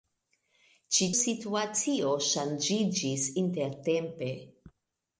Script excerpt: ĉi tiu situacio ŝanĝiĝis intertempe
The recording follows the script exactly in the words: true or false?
false